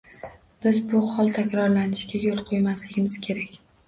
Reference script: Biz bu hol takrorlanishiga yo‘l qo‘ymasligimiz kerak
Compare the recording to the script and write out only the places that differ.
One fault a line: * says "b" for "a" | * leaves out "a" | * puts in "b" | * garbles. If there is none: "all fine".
all fine